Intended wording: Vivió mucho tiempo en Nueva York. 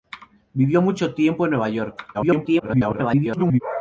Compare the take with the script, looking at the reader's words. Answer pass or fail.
fail